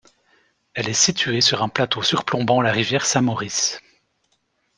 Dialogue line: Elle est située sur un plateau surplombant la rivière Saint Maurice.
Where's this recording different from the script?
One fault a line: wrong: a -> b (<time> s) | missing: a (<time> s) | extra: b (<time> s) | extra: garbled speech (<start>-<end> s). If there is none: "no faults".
no faults